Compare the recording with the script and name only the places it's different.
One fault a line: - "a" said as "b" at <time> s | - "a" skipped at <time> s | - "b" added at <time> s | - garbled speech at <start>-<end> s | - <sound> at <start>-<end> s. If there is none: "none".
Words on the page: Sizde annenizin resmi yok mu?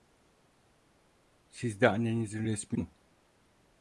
- "yok" skipped at 2.8 s